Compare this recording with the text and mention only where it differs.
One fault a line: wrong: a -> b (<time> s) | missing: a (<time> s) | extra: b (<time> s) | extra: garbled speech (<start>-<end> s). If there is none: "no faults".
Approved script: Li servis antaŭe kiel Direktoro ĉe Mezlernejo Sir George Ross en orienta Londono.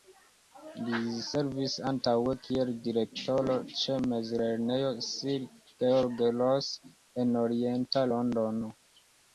no faults